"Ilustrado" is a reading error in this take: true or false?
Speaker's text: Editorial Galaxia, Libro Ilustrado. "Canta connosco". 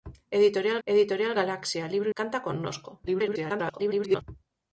true